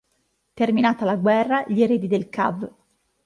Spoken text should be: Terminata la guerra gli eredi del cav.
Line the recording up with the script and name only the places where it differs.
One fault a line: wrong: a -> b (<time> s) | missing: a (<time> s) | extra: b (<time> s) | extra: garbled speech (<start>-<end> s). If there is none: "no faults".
no faults